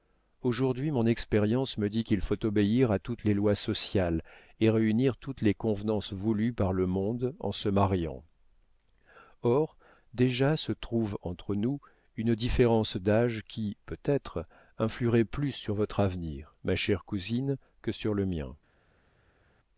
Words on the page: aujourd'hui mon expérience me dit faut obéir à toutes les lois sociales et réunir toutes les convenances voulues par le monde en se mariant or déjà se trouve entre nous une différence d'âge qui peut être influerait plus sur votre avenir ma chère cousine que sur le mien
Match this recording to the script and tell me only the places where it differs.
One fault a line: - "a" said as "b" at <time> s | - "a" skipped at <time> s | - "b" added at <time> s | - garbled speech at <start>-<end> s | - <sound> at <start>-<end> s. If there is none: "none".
- "qu'il" added at 2.0 s